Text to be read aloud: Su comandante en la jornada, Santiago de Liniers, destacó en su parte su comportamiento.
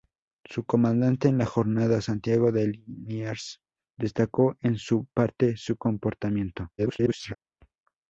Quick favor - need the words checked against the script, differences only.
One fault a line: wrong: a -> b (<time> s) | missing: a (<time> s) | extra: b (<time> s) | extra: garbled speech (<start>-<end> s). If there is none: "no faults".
extra: garbled speech (6.8-7.4 s)